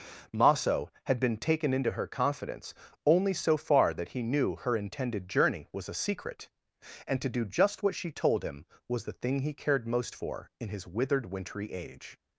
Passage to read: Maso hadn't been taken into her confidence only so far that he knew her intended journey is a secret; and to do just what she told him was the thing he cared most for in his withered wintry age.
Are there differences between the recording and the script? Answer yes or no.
yes